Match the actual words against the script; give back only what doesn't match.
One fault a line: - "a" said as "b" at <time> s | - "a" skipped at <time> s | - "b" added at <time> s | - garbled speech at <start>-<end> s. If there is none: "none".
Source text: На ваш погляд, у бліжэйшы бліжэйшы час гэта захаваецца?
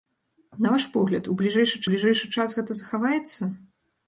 none